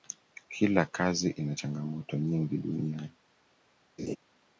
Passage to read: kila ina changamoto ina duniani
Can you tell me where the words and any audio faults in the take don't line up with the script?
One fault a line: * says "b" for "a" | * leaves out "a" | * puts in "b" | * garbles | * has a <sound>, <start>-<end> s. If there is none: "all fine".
* puts in "kazi"
* says "nyingi" for "ina"
* has a laugh, 4.0-4.2 s